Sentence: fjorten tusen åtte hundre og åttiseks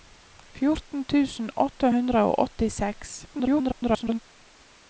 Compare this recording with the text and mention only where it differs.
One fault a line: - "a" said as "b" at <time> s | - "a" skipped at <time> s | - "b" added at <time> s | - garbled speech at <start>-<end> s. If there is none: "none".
- garbled speech at 3.3-4.2 s